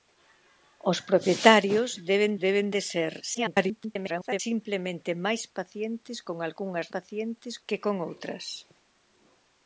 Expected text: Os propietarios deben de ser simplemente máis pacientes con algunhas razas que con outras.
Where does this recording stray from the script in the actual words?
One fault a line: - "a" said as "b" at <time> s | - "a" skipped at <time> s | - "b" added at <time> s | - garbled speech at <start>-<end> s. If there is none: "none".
- "deben" added at 2.5 s
- garbled speech at 3.3-4.4 s
- "razas" said as "pacientes" at 6.9 s